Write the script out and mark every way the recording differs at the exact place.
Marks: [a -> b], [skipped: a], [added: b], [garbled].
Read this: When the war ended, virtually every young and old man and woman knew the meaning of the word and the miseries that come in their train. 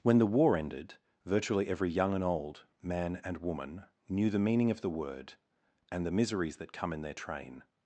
When the war ended, virtually every young and old man and woman knew the meaning of the word and the miseries that come in their train.